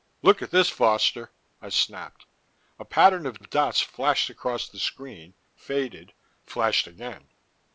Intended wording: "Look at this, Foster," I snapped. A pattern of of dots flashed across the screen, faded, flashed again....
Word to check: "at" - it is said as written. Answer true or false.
true